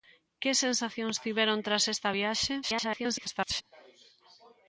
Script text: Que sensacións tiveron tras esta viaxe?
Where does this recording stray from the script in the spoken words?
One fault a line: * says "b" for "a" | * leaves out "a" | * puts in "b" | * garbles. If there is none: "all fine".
* garbles